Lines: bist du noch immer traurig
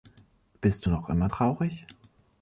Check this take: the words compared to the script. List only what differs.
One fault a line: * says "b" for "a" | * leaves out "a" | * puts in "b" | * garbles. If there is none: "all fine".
all fine